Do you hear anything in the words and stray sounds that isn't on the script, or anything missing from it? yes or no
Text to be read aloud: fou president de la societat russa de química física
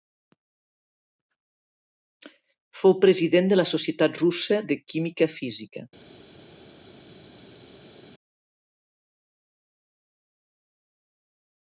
no